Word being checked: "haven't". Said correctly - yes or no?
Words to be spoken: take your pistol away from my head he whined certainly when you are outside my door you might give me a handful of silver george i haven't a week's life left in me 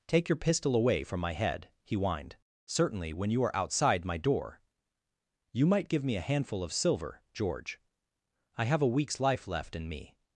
no